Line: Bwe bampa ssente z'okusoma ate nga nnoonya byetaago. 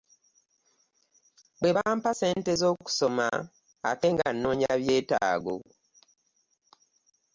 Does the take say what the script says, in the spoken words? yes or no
yes